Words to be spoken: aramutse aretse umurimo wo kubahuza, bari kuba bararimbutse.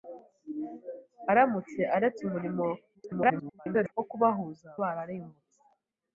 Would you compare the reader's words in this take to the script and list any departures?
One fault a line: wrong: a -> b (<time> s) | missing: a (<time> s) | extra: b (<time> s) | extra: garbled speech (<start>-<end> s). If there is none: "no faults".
extra: garbled speech (2.9-3.9 s)
missing: bari kuba (4.7 s)